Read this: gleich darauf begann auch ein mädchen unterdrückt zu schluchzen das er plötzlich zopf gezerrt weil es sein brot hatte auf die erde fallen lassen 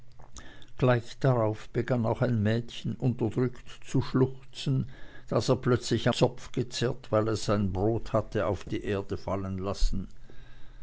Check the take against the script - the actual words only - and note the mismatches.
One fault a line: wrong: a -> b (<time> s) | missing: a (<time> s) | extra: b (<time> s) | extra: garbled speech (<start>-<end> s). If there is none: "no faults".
no faults